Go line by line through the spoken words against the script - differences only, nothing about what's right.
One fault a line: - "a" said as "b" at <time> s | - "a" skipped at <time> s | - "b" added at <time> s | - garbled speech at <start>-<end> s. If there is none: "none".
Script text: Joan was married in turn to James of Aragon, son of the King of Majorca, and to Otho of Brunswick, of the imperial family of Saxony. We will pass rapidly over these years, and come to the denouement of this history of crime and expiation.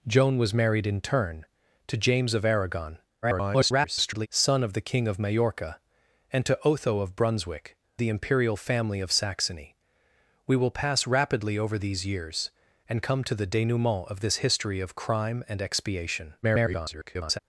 - garbled speech at 3.2-4.3 s
- "of" skipped at 7.8 s
- garbled speech at 16.4-17.4 s